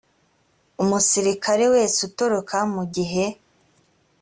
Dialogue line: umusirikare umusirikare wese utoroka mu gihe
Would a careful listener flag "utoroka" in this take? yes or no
no